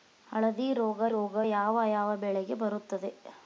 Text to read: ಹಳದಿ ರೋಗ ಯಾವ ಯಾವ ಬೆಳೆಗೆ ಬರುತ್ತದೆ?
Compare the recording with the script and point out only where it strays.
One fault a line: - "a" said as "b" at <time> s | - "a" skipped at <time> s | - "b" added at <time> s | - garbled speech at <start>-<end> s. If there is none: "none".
- "ರೋಗ" added at 1.1 s